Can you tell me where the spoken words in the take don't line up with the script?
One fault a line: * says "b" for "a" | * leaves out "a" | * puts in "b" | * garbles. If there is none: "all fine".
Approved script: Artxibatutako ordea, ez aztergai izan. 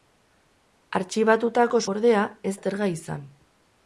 all fine